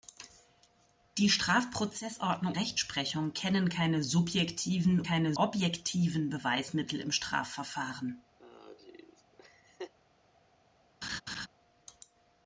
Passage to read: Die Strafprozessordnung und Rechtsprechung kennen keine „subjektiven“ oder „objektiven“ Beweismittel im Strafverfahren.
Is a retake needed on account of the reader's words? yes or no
yes